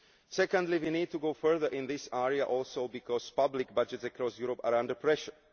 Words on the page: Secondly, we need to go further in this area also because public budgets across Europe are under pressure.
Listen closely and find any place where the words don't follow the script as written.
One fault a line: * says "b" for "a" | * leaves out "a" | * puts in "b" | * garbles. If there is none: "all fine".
all fine